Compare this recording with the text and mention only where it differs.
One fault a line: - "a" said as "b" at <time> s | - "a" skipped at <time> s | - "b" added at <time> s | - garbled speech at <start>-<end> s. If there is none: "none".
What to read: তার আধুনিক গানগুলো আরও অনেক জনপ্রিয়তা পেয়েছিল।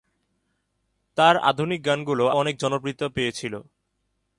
- "আরও" skipped at 2.2 s